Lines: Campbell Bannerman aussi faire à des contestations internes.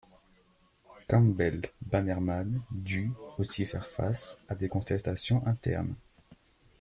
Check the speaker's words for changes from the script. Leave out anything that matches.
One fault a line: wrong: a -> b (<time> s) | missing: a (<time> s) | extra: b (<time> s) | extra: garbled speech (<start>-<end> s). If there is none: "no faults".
extra: dut (2.7 s)
extra: face (3.9 s)